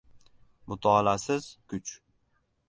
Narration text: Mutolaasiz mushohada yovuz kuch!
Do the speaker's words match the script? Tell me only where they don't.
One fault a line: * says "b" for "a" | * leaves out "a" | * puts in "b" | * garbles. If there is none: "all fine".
* leaves out "mushohada yovuz"